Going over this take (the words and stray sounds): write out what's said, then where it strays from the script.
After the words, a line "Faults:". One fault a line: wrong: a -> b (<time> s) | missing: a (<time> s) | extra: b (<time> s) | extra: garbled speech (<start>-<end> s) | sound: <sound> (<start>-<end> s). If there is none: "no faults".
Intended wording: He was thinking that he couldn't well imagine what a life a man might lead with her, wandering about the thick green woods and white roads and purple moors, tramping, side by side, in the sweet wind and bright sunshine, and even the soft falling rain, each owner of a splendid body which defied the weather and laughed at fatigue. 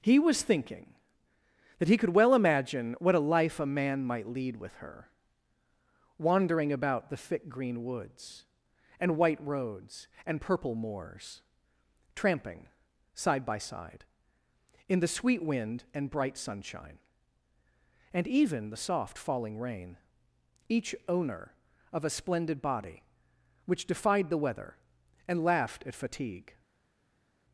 He was thinking that he could well imagine what a life a man might lead with her, wandering about the thick green woods and white roads and purple moors, tramping, side by side, in the sweet wind and bright sunshine, and even the soft falling rain, each owner of a splendid body which defied the weather and laughed at fatigue.
Faults:
wrong: couldn't -> could (2.0 s)